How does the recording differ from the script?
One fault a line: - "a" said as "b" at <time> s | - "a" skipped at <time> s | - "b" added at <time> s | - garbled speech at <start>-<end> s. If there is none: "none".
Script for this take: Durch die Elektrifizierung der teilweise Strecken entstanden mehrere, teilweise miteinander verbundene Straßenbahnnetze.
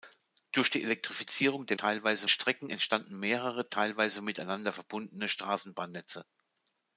none